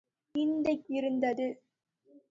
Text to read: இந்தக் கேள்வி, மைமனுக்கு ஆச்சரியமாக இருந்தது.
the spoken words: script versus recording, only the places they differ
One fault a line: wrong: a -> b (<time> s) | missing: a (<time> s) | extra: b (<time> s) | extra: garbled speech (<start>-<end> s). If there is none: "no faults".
missing: கேள்வி மைமனுக்கு ஆச்சரியமாக (0.8 s)